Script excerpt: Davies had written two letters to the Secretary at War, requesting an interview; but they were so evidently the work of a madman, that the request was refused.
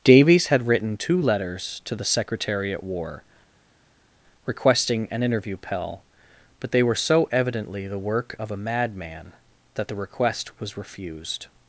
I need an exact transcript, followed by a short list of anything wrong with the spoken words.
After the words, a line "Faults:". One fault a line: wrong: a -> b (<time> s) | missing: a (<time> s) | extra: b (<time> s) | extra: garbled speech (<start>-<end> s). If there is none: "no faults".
Davies had written two letters to the Secretary at War, requesting an interview; pell but they were so evidently the work of a madman, that the request was refused.
Faults:
extra: pell (5.6 s)